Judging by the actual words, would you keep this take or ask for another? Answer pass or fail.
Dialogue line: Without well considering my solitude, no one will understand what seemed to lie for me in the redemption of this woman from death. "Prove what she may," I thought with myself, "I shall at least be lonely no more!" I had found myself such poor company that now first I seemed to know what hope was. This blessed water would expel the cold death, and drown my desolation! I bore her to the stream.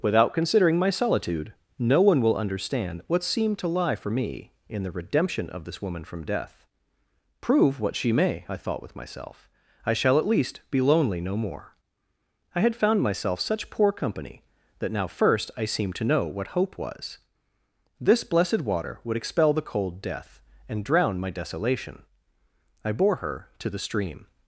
fail